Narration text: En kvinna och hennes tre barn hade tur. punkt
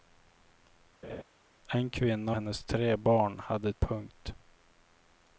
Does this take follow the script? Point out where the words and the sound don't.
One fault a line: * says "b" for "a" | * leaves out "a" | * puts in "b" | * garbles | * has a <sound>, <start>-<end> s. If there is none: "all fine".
* has a laugh, 1.0-1.2 s
* leaves out "och"
* leaves out "tur"